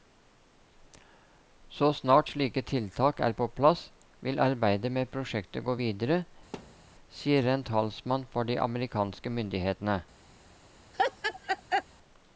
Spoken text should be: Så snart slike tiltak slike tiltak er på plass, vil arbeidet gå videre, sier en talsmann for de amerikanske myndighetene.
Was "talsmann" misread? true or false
false